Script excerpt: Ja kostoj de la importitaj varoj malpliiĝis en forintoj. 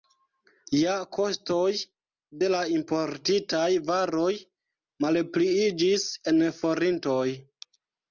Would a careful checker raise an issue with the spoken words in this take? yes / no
no